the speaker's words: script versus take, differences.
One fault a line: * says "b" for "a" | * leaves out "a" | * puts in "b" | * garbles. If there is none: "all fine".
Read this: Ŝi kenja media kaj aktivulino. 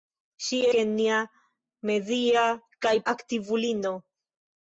all fine